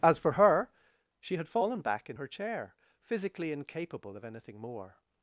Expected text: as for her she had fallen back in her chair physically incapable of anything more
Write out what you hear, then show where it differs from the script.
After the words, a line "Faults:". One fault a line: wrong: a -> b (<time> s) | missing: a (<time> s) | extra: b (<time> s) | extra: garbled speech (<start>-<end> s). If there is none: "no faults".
as for her she had fallen back in her chair physically incapable of anything more
Faults:
no faults